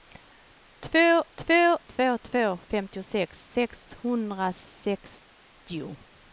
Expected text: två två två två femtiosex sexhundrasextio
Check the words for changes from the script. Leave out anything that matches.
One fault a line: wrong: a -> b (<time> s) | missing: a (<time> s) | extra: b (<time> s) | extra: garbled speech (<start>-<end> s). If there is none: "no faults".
no faults